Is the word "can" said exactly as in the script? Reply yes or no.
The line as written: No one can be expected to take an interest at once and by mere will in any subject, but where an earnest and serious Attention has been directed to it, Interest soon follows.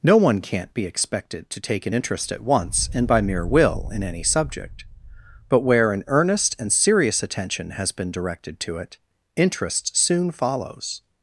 no